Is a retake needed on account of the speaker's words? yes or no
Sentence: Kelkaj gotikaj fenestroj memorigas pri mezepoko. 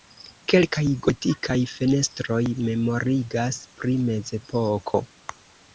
no